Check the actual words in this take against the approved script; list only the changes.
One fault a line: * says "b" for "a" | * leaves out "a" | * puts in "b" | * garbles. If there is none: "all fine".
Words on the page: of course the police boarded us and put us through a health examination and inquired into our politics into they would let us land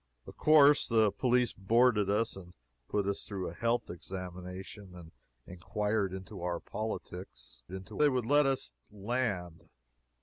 all fine